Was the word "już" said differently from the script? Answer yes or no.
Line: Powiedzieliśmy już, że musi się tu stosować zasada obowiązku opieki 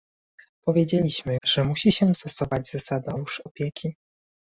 yes